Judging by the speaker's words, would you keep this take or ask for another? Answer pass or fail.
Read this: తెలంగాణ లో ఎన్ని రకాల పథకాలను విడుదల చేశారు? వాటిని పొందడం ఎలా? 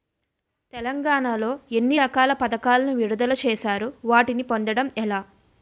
pass